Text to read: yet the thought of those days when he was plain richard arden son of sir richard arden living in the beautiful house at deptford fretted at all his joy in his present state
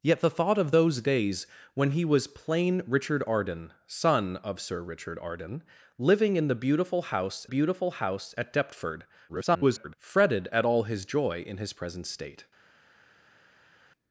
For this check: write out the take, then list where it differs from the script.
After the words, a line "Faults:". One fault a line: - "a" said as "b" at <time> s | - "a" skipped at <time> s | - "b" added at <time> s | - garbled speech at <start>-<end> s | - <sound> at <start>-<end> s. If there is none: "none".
yet the thought of those days when he was plain richard arden son of sir richard arden living in the beautiful house beautiful house at deptford [garbled] fretted at all his joy in his present state
Faults:
- "beautiful house" added at 7.4 s
- garbled speech at 9.3-10.0 s